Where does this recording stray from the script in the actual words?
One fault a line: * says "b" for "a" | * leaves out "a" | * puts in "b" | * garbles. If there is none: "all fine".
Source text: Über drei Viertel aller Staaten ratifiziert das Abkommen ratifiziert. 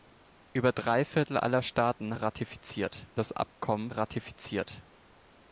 all fine